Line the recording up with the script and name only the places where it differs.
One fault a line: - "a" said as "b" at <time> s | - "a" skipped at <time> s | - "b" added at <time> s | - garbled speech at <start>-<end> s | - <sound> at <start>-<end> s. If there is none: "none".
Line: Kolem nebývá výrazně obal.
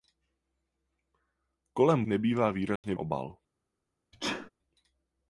- dropout at 2.8-2.8 s
- sneeze at 4.1-4.5 s